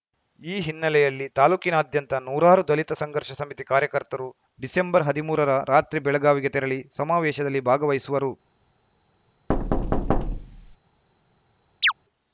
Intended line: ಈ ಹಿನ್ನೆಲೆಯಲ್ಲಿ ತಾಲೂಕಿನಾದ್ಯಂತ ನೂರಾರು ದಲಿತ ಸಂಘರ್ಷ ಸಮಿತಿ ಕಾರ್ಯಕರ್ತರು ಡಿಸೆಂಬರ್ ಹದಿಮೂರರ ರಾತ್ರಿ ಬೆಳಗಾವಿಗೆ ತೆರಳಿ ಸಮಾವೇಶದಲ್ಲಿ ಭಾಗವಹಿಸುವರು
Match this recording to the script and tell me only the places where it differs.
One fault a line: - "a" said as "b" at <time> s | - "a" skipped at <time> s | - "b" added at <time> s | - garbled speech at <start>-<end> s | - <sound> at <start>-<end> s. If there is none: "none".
- thud at 9.5-10.8 s
- chirp at 11.8-11.9 s